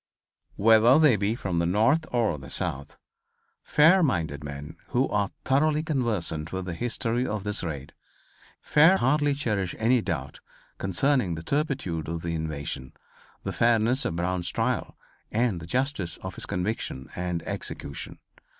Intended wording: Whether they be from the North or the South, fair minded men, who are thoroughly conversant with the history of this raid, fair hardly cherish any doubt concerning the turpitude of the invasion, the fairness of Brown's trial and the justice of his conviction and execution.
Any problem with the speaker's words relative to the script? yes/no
no